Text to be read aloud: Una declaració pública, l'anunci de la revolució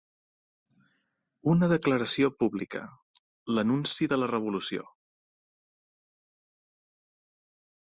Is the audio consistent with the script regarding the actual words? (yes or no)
yes